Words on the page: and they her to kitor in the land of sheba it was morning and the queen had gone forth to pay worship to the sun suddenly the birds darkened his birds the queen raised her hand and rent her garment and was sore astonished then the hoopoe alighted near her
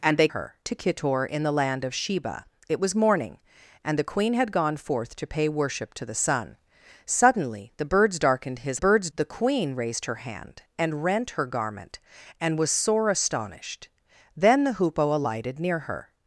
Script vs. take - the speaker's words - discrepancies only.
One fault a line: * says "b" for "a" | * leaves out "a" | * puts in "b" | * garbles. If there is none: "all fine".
all fine